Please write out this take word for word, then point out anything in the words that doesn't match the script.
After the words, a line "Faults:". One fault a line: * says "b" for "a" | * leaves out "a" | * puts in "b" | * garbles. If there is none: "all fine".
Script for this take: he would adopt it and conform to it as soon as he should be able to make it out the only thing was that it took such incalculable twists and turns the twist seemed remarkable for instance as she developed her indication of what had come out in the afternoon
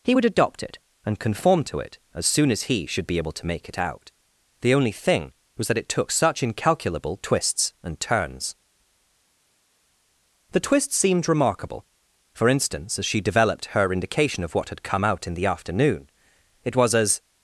he would adopt it and conform to it as soon as he should be able to make it out the only thing was that it took such incalculable twists and turns the twist seemed remarkable for instance as she developed her indication of what had come out in the afternoon it was as
Faults:
* puts in "it was as"